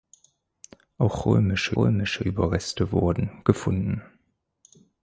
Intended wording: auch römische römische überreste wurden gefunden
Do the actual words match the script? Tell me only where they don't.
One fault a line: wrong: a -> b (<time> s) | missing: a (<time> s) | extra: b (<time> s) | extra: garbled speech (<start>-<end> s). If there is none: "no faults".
no faults